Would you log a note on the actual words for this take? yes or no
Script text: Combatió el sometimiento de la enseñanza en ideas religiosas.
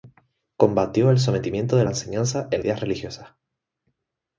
no